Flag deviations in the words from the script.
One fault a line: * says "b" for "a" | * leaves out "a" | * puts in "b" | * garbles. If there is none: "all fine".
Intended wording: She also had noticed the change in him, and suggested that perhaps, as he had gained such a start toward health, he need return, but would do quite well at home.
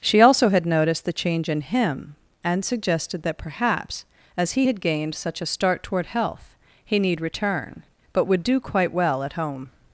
all fine